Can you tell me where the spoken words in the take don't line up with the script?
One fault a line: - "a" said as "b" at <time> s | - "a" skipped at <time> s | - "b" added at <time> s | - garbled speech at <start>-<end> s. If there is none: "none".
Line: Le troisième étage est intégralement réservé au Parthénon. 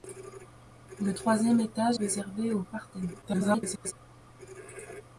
- "est intégralement" skipped at 2.0 s
- garbled speech at 3.2-3.9 s